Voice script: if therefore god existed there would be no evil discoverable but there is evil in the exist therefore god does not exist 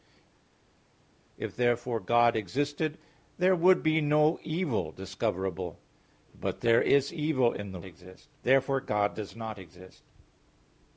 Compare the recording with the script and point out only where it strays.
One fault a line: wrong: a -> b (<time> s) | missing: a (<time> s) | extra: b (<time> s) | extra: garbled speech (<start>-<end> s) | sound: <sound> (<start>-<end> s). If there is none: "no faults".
no faults